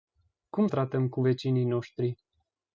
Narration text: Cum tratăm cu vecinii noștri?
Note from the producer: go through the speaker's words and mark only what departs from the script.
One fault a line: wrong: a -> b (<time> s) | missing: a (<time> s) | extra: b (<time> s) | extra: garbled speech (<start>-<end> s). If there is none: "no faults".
no faults